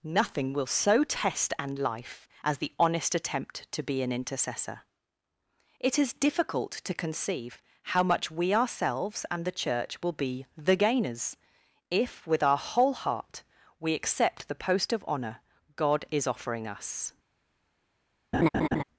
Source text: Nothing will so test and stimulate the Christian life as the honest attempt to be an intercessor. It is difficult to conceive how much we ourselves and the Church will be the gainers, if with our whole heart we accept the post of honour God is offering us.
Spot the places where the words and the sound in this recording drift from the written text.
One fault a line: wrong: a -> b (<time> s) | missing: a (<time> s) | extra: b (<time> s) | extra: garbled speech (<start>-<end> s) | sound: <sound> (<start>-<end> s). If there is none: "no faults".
missing: stimulate the Christian (1.8 s)
sound: laugh (18.3-18.8 s)